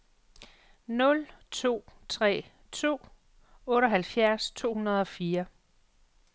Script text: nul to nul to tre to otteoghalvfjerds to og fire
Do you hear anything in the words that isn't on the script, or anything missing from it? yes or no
yes